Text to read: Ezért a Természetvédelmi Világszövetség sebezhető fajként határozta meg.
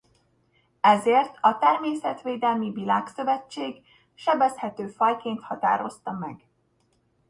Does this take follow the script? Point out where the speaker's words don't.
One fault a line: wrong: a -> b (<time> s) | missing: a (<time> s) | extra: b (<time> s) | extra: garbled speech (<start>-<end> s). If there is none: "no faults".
no faults